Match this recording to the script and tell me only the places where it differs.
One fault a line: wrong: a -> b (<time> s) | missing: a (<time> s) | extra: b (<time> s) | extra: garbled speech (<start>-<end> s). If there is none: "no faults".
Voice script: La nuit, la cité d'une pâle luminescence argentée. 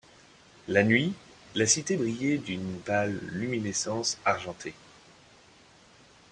extra: brillait (1.9 s)